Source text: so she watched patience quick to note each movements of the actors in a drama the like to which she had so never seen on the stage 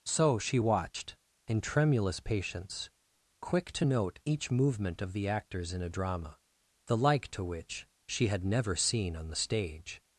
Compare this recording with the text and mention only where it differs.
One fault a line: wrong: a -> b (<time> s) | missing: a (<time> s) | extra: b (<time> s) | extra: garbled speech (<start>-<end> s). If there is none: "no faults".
extra: in tremulous (1.5 s)
wrong: movements -> movement (4.5 s)
missing: so (8.4 s)